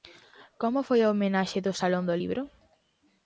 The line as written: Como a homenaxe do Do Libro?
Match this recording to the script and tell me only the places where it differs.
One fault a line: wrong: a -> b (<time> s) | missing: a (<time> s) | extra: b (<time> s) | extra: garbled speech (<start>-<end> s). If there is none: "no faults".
extra: foi (0.9 s)
extra: Salón (1.8 s)